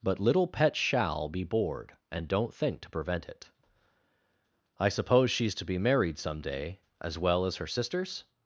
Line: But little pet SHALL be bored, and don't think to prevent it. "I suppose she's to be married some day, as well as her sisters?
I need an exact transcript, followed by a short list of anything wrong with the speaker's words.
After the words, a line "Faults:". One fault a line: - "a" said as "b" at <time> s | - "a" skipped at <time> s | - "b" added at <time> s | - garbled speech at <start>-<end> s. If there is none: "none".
But little pet SHALL be bored, and don't think to prevent it. "I suppose she's to be married some day, as well as her sisters?
Faults:
none